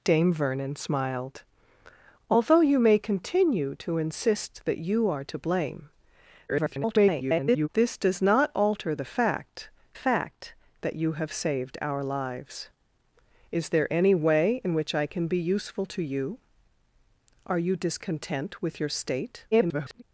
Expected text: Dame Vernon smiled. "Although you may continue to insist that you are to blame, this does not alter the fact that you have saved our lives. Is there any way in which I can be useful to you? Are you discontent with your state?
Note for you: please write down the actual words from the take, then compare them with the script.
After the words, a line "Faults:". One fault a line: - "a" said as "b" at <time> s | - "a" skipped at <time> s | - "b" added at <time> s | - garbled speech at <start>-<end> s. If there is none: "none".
Dame Vernon smiled. "Although you may continue to insist that you are to blame, [garbled] this does not alter the fact fact that you have saved our lives. Is there any way in which I can be useful to you? Are you discontent with your state? [garbled]
Faults:
- garbled speech at 6.5-7.7 s
- "fact" added at 9.9 s
- garbled speech at 19.5-20.0 s